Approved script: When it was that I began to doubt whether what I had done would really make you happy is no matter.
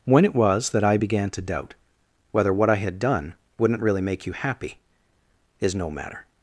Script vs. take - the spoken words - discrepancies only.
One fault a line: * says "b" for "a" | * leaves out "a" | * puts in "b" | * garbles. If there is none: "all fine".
* says "wouldn't" for "would"